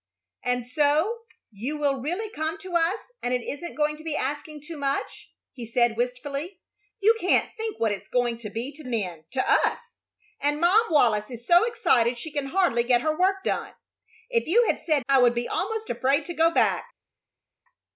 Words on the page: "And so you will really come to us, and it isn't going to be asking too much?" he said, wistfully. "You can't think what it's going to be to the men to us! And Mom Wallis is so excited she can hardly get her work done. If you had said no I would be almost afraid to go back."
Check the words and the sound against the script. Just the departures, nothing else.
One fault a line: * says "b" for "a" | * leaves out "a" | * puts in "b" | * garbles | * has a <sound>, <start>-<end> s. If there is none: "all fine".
* leaves out "the"
* leaves out "no"